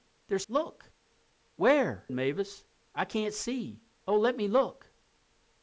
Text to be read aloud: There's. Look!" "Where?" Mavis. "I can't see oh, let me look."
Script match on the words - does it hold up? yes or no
yes